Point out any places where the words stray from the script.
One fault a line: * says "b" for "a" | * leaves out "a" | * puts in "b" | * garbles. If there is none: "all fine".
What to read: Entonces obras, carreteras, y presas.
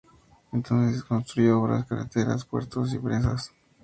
* puts in "construyó"
* puts in "puertos"